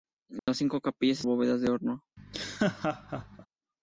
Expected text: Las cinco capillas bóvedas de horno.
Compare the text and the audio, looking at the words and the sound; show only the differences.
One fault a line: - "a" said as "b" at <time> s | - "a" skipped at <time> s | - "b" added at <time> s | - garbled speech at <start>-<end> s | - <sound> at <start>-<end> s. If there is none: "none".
- dropout at 0.4-0.5 s
- laugh at 2.2-3.5 s